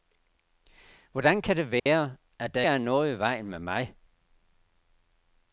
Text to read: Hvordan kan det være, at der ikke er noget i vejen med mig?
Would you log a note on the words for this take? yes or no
yes